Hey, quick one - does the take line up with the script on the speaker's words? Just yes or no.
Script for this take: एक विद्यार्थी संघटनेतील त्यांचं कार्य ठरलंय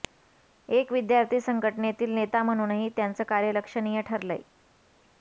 no